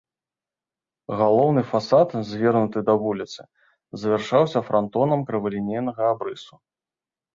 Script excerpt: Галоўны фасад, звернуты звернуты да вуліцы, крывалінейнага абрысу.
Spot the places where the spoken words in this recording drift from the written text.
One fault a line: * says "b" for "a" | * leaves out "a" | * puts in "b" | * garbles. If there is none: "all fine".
* leaves out "звернуты"
* puts in "завяршаўся франтонам"